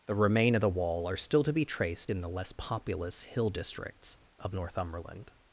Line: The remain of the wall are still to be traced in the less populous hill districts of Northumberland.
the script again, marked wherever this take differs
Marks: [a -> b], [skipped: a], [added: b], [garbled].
The remain of the wall are still to be traced in the less populous hill districts of Northumberland.